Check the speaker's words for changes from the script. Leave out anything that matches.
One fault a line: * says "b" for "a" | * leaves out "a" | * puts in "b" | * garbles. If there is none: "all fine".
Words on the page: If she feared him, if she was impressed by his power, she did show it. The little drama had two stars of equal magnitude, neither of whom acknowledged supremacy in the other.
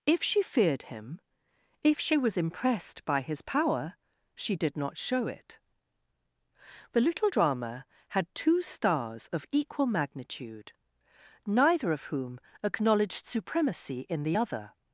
* puts in "not"